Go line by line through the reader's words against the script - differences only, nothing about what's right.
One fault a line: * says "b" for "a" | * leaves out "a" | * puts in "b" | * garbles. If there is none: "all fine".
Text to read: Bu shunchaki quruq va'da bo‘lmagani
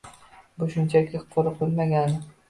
* leaves out "va'da"